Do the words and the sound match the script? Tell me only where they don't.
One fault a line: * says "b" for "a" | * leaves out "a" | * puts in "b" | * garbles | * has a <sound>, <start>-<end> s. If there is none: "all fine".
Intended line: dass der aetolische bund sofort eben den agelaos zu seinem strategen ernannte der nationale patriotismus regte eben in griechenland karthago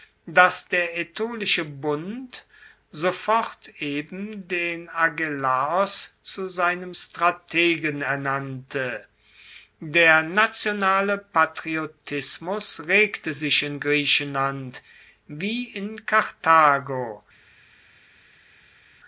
* says "sich" for "eben"
* puts in "wie in"